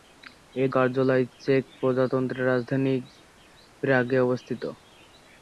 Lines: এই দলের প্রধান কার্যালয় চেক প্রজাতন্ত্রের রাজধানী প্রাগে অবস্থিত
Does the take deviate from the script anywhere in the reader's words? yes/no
yes